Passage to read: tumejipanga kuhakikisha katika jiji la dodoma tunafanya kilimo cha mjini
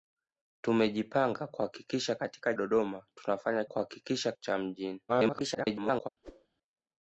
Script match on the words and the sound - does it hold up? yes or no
no